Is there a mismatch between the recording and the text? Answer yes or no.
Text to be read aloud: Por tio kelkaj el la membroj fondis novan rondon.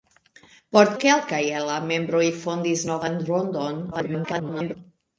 yes